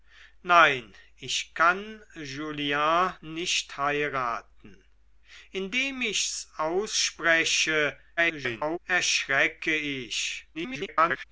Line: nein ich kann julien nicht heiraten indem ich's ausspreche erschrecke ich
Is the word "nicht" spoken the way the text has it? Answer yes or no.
yes